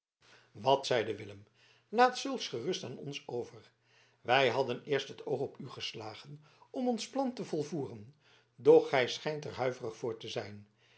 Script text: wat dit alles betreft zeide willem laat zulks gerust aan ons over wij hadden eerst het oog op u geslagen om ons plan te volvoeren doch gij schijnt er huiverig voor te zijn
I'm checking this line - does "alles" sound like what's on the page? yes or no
no